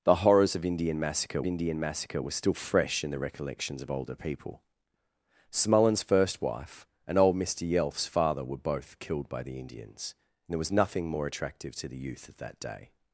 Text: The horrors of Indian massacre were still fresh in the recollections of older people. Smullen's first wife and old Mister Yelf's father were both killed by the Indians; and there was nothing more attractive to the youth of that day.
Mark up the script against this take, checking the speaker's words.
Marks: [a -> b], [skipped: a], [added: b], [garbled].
The horrors of Indian massacre [added: Indian massacre] were still fresh in the recollections of older people. Smullen's first wife and old Mister Yelf's father were both killed by the Indians; and there was nothing more attractive to the youth of that day.